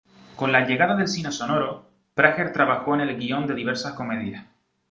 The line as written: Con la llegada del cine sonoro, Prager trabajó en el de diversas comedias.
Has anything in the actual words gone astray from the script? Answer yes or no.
yes